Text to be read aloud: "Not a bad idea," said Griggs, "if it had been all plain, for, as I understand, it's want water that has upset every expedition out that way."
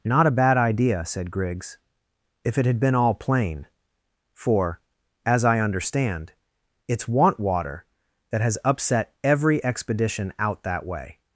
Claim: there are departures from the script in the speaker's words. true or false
false